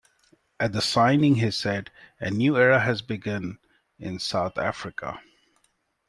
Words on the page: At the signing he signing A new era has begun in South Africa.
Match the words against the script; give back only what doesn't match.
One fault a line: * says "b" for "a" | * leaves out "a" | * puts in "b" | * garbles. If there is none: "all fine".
* says "said" for "signing"